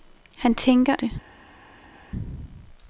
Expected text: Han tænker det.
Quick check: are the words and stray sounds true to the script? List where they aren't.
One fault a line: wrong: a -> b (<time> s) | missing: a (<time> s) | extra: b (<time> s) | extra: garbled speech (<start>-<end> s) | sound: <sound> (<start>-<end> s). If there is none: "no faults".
no faults